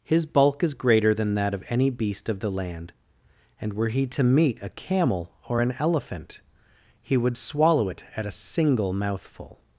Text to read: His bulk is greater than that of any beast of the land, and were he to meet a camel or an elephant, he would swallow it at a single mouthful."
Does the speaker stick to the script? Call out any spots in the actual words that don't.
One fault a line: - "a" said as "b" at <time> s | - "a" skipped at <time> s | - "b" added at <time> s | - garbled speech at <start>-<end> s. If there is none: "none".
none